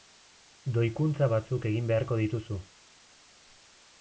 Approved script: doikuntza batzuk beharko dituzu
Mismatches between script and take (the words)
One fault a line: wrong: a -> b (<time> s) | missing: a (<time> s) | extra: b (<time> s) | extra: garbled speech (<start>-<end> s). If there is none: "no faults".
extra: egin (1.7 s)